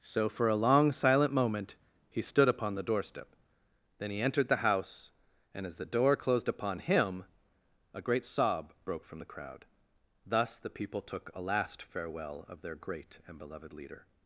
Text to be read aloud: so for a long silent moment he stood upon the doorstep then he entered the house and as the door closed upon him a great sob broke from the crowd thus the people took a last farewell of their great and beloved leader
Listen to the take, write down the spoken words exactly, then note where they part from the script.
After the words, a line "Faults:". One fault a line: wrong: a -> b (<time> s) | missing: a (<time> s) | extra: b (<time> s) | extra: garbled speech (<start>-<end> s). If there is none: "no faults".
so for a long silent moment he stood upon the doorstep then he entered the house and as the door closed upon him a great sob broke from the crowd thus the people took a last farewell of their great and beloved leader
Faults:
no faults